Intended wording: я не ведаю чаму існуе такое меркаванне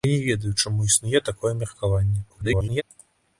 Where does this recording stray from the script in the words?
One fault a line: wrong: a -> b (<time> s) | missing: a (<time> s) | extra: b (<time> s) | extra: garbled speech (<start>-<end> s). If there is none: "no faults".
extra: garbled speech (2.3-2.8 s)